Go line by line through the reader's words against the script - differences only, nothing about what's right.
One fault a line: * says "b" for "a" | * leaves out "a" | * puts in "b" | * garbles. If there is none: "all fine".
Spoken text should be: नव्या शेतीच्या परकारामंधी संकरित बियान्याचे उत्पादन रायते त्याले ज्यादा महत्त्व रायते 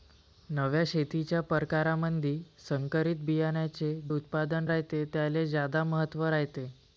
all fine